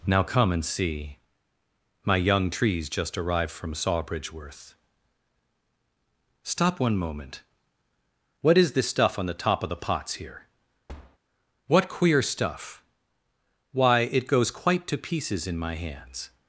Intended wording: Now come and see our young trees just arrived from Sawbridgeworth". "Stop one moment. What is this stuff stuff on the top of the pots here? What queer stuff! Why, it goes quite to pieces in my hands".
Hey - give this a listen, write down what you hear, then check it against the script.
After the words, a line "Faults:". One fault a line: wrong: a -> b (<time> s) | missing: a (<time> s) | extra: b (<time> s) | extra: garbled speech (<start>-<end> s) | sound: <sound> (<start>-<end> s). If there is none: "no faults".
Now come and see my young trees just arrived from Sawbridgeworth". "Stop one moment. What is this stuff on the top of the pots here? What queer stuff! Why, it goes quite to pieces in my hands".
Faults:
wrong: our -> my (2.0 s)
missing: stuff (9.2 s)
sound: thud (10.9-11.2 s)